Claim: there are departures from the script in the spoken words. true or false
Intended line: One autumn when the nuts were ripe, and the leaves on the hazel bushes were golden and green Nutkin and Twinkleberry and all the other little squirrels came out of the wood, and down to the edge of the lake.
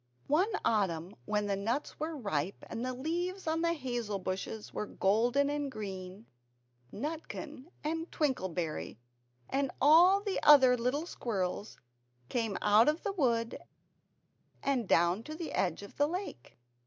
false